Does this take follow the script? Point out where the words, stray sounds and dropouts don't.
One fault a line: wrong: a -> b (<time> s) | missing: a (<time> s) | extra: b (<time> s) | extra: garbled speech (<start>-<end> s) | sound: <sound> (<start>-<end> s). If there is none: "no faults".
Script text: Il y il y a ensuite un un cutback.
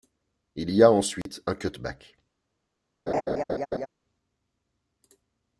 missing: il y (0.8 s)
sound: dropout (1.2-1.3 s)
missing: un (1.5 s)
sound: laugh (3.1-3.9 s)